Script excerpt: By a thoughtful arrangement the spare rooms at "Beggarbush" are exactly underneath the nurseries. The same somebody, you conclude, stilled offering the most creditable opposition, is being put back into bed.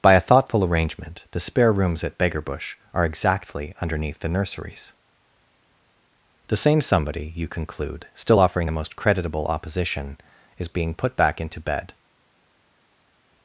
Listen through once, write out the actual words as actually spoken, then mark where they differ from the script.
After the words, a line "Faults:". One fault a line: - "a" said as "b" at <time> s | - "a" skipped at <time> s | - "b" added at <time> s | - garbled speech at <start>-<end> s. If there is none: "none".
By a thoughtful arrangement the spare rooms at "Beggarbush" are exactly underneath the nurseries. The same somebody, you conclude, still offering the most creditable opposition, is being put back into bed.
Faults:
- "stilled" said as "still" at 8.1 s